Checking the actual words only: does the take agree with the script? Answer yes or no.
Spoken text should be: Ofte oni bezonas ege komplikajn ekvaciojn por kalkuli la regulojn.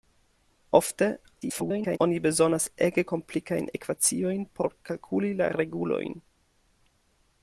no